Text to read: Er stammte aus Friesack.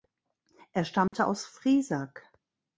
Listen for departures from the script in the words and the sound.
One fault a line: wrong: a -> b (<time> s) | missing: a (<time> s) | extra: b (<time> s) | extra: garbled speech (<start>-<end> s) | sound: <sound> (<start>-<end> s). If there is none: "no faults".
sound: dropout (1.1-1.1 s)